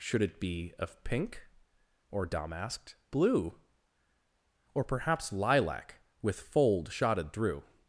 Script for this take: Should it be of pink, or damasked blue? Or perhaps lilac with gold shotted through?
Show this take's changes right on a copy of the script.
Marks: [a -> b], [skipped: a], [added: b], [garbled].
Should it be of pink, or damasked blue? Or perhaps lilac with [gold -> fold] shotted through?